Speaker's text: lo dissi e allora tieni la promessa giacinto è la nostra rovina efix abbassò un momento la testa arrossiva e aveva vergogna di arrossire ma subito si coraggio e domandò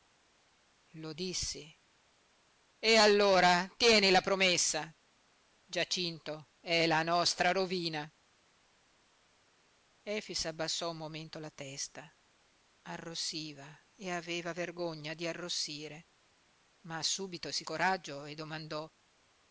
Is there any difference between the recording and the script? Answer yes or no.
no